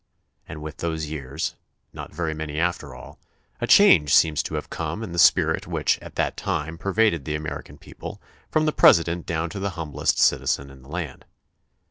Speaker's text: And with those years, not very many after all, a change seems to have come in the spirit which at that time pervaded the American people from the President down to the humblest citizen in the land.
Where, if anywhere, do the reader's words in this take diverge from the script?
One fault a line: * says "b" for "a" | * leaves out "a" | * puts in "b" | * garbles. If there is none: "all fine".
all fine